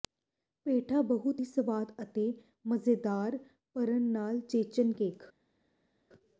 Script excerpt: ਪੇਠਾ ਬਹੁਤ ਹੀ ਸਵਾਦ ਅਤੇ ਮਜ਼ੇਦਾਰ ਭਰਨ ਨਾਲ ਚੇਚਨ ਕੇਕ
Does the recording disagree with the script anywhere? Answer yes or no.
no